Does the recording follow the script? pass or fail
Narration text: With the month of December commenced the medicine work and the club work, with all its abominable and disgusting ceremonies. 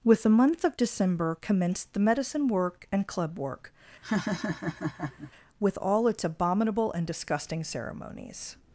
fail